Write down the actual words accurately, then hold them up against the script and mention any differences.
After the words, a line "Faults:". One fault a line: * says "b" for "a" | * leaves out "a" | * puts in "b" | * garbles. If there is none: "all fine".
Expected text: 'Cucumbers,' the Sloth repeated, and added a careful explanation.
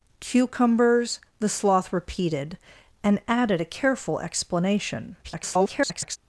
'Cucumbers,' the Sloth repeated, and added a careful explanation. [garbled]
Faults:
* garbles